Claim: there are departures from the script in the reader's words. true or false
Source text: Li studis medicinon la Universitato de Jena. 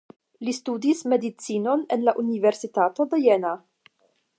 true